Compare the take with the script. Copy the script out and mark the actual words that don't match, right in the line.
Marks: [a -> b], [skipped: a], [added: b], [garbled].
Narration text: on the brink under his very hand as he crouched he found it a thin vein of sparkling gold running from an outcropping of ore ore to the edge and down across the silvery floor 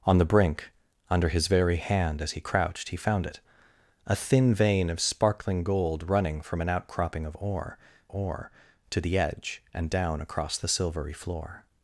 on the brink under his very hand as he crouched he found it a thin vein of sparkling gold running from an outcropping of ore ore to the edge and down across the silvery floor